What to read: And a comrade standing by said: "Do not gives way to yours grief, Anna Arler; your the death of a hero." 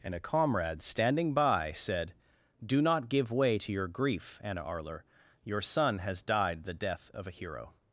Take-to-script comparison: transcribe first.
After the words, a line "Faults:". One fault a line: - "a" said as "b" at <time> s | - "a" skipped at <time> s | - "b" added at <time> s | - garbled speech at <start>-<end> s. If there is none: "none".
And a comrade standing by said: "Do not give way to your grief, Anna Arler; your son has died the death of a hero."
Faults:
- "gives" said as "give" at 3.1 s
- "yours" said as "your" at 3.7 s
- "son has died" added at 5.6 s